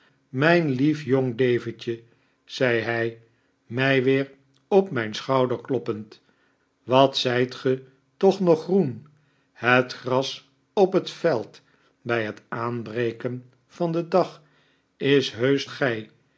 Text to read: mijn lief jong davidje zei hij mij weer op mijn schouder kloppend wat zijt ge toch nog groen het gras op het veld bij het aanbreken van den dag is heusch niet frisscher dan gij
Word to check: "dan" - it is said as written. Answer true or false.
false